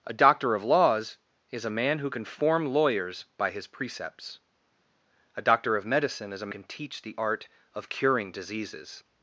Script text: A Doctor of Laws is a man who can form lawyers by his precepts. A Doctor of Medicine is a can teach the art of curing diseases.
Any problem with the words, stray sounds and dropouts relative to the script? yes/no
no